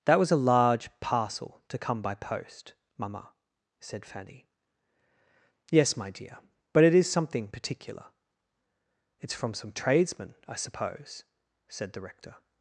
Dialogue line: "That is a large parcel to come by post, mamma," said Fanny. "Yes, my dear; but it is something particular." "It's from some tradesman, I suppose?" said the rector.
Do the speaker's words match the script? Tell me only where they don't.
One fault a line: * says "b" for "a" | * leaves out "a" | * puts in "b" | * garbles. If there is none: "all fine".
* says "was" for "is"